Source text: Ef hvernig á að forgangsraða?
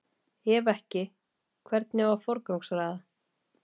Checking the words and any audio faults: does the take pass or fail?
fail